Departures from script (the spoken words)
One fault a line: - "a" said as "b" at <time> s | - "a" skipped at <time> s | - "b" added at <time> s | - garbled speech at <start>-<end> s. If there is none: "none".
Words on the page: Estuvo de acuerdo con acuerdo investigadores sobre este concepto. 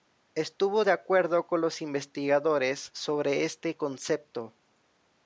- "acuerdo" said as "los" at 1.6 s